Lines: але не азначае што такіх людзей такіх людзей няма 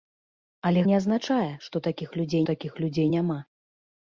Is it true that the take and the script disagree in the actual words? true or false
false